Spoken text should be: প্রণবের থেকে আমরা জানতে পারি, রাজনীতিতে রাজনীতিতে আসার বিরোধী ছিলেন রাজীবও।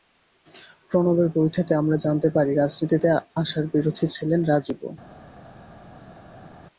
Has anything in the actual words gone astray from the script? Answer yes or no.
yes